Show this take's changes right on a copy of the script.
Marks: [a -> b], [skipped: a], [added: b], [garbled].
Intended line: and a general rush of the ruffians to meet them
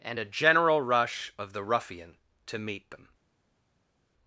and a general rush of the [ruffians -> ruffian] to meet them